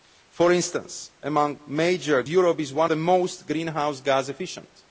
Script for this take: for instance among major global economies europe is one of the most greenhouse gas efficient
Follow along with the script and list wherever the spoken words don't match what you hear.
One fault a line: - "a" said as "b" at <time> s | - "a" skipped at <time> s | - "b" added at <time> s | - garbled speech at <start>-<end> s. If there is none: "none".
- "global economies" skipped at 2.2 s
- "of" skipped at 2.9 s